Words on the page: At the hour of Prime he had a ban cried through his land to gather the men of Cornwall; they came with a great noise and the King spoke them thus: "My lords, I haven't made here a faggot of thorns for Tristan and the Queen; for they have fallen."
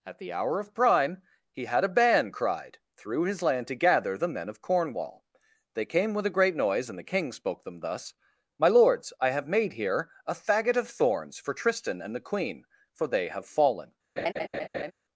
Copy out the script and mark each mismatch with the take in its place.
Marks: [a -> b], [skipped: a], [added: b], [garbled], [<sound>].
At the hour of Prime he had a ban cried through his land to gather the men of Cornwall; they came with a great noise and the King spoke them thus: "My lords, I [haven't -> have] made here a faggot of thorns for Tristan and the Queen; for they have fallen." [laugh]